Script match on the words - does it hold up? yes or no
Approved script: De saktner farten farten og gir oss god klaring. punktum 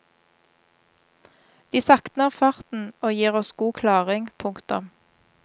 no